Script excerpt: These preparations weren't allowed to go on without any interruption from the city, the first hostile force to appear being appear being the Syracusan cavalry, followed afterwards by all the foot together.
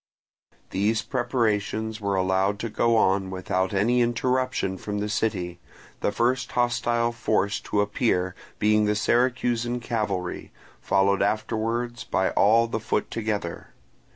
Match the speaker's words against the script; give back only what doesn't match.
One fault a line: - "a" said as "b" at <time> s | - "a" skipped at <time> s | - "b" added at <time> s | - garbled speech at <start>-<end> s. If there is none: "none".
- "weren't" said as "were" at 2.0 s
- "appear being" skipped at 8.8 s